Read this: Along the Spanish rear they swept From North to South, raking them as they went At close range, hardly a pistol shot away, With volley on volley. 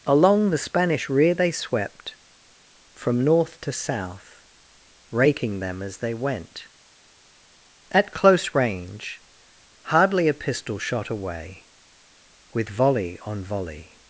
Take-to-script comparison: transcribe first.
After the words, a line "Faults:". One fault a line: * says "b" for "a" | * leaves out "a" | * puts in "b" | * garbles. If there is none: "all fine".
Along the Spanish rear they swept From North to South, raking them as they went At close range, hardly a pistol shot away, With volley on volley.
Faults:
all fine